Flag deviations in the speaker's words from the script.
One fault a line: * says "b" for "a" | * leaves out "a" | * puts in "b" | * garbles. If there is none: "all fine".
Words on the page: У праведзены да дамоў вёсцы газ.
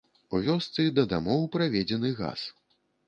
* says "вёсцы" for "праведзены"
* says "праведзены" for "вёсцы"